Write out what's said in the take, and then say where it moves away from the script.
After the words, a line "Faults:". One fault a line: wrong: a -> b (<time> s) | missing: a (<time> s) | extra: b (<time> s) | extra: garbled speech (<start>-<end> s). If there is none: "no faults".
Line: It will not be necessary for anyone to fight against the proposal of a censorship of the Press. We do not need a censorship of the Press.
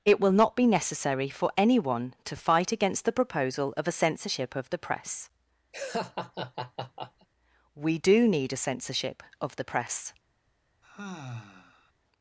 It will not be necessary for anyone to fight against the proposal of a censorship of the Press. We do need a censorship of the Press.
Faults:
missing: not (8.3 s)